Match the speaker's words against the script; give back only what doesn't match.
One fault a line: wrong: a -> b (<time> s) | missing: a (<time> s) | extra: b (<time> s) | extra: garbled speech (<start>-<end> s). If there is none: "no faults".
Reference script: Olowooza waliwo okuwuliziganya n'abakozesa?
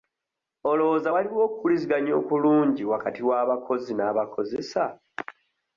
extra: okulungi wakati w'abakozi (2.2 s)